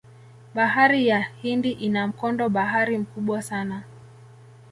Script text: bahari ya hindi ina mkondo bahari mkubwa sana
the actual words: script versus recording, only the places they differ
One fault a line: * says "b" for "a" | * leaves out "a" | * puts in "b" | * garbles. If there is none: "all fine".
all fine